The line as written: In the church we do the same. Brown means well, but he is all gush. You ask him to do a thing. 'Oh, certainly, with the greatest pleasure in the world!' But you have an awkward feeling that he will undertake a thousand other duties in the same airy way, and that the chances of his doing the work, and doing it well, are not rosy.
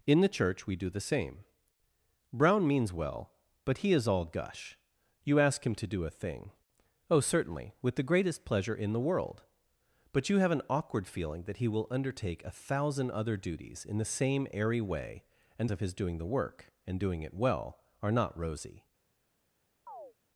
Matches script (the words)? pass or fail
fail